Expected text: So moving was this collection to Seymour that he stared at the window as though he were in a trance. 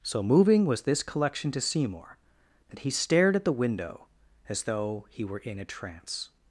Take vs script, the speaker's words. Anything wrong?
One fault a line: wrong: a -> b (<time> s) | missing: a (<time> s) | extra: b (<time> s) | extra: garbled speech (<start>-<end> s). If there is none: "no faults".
no faults